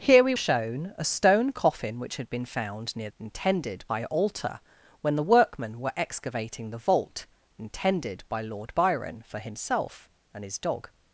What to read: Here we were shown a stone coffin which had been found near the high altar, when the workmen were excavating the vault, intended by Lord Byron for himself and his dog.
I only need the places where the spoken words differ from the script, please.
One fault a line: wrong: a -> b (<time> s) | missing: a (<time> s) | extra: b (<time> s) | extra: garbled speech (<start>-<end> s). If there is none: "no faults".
missing: were (0.3 s)
wrong: the -> intended (3.2 s)